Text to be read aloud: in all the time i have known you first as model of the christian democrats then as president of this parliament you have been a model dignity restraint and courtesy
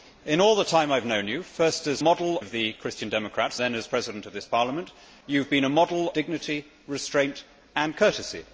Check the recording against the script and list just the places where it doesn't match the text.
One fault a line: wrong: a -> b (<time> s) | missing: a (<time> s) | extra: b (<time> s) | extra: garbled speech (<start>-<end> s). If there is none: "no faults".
no faults